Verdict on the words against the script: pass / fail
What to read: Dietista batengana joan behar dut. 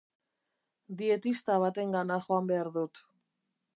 pass